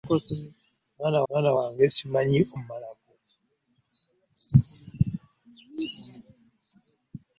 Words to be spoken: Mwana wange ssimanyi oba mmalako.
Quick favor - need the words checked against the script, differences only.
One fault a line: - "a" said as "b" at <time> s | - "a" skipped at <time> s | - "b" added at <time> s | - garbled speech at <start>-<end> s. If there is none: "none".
- "mwana" added at 1.3 s
- "oba" skipped at 2.4 s